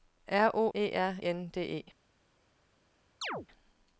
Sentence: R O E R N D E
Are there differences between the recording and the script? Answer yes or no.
no